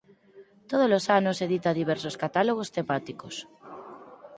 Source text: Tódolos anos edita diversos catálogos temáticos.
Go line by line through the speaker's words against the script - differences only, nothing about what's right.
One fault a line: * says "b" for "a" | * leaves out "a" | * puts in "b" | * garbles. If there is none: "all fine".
all fine